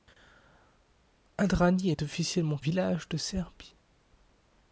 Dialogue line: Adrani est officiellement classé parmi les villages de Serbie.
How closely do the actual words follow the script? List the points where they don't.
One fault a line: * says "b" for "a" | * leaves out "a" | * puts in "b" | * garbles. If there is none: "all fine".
* leaves out "classé parmi les"